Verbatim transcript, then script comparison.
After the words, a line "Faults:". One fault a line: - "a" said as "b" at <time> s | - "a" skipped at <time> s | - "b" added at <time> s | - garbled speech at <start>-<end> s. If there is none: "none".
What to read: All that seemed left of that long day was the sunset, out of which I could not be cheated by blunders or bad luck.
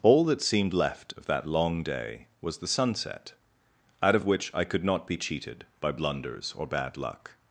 All that seemed left of that long day was the sunset, out of which I could not be cheated by blunders or bad luck.
Faults:
none